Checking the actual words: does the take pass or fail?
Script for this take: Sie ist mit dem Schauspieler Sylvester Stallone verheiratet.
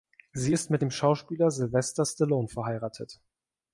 pass